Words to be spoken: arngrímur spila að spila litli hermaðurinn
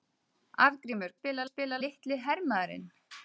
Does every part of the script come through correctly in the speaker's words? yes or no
yes